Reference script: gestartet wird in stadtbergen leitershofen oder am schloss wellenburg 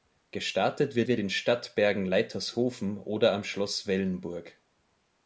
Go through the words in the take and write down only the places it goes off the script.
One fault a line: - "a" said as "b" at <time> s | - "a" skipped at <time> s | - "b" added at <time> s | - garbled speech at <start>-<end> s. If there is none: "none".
- "wird" added at 1.1 s